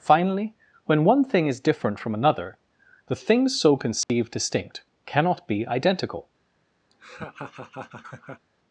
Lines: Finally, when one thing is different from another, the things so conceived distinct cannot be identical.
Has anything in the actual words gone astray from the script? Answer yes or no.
no